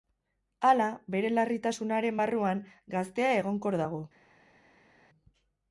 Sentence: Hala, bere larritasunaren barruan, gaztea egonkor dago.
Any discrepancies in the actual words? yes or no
no